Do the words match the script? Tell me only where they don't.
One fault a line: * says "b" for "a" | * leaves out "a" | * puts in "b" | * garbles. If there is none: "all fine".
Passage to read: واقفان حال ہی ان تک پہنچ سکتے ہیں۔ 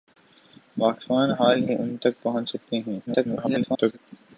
* garbles